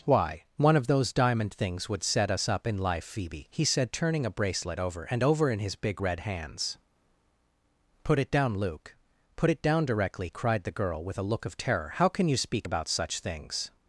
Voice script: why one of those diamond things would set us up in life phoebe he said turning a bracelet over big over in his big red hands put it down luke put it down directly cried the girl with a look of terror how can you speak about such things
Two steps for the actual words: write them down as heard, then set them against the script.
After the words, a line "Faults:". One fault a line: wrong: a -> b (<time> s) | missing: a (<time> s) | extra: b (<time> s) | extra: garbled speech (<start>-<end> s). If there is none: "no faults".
why one of those diamond things would set us up in life phoebe he said turning a bracelet over and over in his big red hands put it down luke put it down directly cried the girl with a look of terror how can you speak about such things
Faults:
wrong: big -> and (5.0 s)